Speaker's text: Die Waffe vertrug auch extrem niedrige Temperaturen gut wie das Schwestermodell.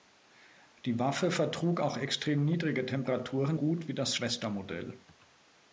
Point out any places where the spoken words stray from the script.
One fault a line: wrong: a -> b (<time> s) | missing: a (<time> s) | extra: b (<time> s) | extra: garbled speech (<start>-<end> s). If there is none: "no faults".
no faults